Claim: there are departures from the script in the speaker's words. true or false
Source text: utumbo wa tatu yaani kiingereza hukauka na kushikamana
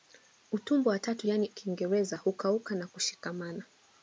false